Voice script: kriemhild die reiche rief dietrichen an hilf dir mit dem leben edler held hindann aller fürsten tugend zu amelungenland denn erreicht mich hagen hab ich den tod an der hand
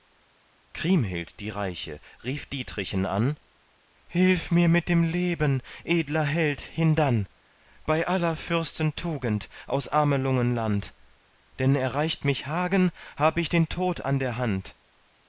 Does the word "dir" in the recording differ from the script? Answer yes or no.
yes